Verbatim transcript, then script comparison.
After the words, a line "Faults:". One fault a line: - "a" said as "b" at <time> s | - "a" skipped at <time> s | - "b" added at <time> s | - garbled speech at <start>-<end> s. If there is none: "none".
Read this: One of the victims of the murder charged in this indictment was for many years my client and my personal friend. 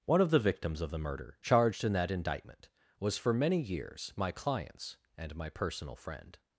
One of the victims of the murder charged in that indictment was for many years my clients and my personal friend.
Faults:
- "this" said as "that" at 1.9 s
- "client" said as "clients" at 4.3 s